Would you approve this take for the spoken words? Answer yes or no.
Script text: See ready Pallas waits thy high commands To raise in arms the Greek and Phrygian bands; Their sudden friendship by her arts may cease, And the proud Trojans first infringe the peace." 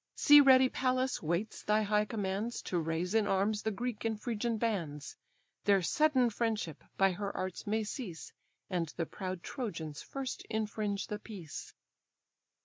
yes